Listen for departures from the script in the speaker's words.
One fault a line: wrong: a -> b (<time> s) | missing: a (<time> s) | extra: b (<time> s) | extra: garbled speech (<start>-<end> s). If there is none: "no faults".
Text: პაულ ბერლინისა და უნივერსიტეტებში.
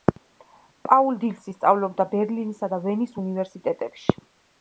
extra: დილსი სწავლობდა (1.2 s)
extra: ვენის (2.9 s)